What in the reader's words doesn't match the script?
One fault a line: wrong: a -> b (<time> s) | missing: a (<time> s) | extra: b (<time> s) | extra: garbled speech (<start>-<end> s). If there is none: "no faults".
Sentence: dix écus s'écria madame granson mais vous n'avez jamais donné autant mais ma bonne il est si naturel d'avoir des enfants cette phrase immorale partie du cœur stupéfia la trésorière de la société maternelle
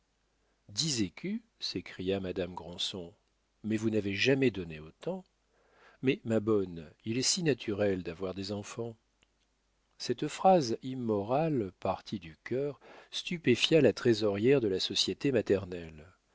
no faults